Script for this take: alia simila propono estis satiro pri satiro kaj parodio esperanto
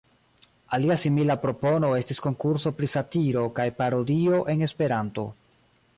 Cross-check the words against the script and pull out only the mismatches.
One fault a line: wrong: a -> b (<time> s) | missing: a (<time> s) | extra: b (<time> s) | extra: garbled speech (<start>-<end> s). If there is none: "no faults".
wrong: satiro -> konkurso (2.3 s)
extra: en (4.5 s)